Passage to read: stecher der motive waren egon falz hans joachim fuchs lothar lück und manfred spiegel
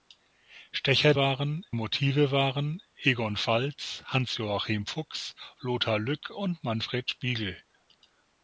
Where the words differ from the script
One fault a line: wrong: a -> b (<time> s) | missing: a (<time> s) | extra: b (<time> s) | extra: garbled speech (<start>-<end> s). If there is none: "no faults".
wrong: der -> waren (1.1 s)